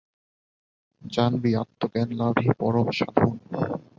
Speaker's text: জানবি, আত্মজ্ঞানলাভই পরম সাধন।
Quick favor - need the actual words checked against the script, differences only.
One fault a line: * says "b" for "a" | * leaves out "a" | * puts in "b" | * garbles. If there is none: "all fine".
all fine